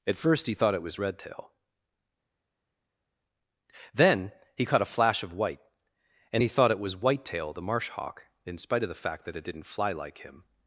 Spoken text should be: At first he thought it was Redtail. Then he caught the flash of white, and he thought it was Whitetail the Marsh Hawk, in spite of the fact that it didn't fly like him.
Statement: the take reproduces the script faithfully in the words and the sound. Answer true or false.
false